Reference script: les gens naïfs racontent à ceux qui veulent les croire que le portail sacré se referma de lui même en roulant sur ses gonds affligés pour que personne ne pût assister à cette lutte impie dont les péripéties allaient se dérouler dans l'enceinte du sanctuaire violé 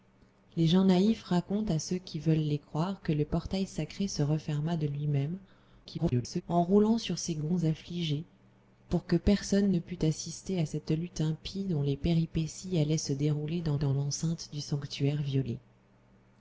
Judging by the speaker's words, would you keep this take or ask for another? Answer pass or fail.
fail